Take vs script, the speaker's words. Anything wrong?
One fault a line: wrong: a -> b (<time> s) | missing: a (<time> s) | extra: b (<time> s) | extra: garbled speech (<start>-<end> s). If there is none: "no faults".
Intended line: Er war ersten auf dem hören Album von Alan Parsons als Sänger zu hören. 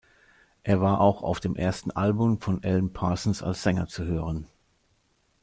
wrong: ersten -> auch (1.0 s)
wrong: hören -> ersten (1.6 s)